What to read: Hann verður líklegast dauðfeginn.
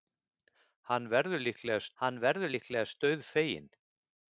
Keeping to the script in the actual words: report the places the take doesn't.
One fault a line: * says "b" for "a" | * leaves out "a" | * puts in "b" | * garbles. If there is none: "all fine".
* puts in "hann verður líklegast"